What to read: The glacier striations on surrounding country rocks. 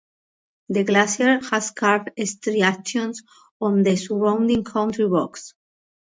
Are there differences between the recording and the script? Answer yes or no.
yes